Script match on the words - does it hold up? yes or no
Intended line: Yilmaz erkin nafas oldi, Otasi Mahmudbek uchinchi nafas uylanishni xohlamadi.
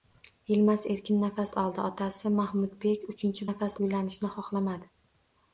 yes